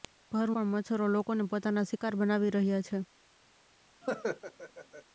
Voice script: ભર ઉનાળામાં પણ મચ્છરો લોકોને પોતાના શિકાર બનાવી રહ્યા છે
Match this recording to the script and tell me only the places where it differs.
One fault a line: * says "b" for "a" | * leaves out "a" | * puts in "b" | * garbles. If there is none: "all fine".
* leaves out "ઉનાળામાં"